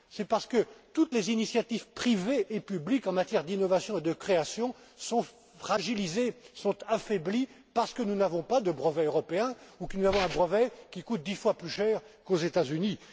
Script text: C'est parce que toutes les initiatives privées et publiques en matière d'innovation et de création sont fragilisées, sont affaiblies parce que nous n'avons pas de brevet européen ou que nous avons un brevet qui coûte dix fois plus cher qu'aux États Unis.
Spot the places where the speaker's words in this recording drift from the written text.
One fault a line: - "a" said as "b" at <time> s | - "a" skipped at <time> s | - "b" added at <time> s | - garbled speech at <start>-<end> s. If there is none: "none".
none